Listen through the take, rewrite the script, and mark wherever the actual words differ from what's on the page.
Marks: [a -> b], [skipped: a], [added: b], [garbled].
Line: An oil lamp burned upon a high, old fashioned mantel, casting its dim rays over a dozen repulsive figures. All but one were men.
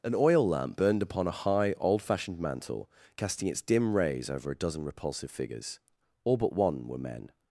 An oil lamp burned upon a high, old fashioned mantel, casting its dim rays over a dozen repulsive figures. All but one were men.